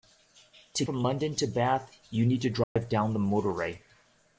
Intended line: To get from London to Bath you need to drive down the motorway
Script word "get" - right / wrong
wrong